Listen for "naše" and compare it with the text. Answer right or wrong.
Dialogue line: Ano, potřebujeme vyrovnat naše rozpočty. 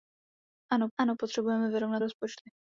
wrong